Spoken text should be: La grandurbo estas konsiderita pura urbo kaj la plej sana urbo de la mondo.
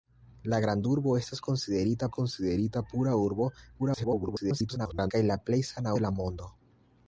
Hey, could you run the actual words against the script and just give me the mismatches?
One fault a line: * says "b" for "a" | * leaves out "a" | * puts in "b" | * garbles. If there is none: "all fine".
* puts in "konsiderita"
* garbles
* leaves out "urbo"